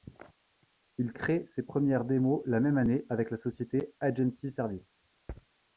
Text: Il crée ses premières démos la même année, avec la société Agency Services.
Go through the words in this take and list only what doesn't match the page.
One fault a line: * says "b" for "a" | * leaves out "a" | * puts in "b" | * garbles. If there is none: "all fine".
all fine